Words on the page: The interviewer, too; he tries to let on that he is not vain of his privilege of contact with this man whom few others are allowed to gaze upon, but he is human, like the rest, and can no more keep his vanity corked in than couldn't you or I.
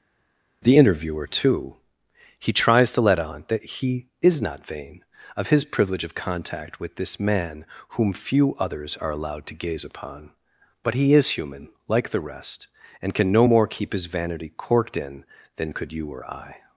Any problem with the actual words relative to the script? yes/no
yes